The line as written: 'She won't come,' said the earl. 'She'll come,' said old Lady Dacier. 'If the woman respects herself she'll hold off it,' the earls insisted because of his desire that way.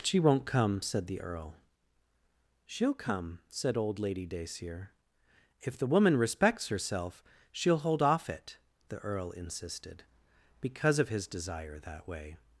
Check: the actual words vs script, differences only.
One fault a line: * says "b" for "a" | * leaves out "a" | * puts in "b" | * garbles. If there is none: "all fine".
* says "earl" for "earls"